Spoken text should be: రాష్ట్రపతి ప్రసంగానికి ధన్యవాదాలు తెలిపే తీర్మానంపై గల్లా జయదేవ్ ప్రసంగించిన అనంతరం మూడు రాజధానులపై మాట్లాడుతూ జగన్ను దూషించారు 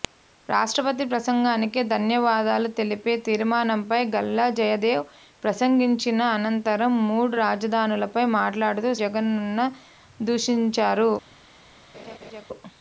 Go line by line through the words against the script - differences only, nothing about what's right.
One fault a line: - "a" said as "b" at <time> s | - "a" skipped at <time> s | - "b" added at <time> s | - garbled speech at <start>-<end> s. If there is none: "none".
none